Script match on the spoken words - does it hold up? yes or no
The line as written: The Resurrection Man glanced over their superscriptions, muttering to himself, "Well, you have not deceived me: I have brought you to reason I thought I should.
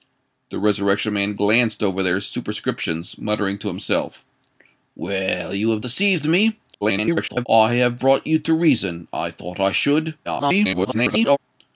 no